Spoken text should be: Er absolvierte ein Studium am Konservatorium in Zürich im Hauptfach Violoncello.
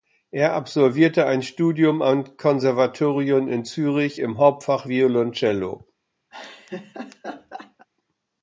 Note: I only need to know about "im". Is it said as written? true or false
true